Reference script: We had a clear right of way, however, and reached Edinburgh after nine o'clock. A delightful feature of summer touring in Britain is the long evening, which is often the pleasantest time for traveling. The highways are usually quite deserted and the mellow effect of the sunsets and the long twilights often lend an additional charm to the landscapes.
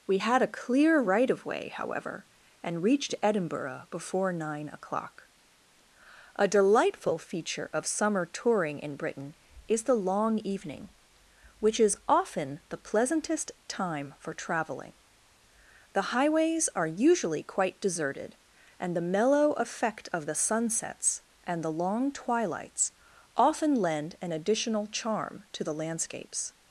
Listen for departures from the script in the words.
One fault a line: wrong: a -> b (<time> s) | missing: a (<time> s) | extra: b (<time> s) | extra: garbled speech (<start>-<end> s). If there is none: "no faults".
wrong: after -> before (3.9 s)